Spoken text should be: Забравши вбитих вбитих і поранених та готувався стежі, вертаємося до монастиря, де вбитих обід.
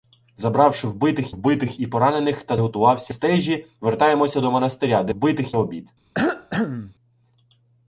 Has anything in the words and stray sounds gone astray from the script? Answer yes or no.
yes